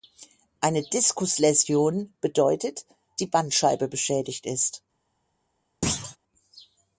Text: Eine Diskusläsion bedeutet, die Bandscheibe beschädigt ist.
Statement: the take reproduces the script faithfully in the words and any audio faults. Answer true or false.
false